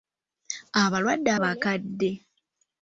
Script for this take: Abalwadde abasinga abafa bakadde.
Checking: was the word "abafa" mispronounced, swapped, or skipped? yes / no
yes